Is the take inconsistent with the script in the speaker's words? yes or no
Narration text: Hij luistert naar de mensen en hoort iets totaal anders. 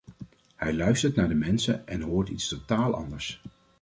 no